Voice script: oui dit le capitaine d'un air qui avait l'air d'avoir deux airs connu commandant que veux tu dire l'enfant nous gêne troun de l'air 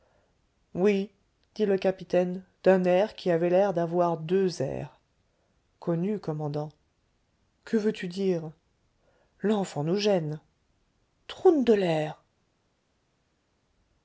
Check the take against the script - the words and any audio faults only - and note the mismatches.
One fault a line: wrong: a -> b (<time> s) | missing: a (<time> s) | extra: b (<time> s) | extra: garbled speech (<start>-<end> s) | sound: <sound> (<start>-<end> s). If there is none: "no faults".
no faults